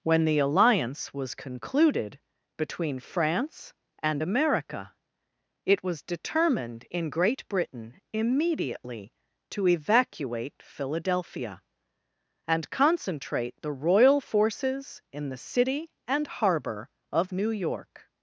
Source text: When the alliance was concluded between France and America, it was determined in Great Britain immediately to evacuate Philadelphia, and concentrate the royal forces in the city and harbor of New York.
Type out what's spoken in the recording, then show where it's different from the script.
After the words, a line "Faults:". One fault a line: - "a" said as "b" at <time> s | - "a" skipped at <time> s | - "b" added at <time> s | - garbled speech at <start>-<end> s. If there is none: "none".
When the alliance was concluded between France and America, it was determined in Great Britain immediately to evacuate Philadelphia, and concentrate the royal forces in the city and harbor of New York.
Faults:
none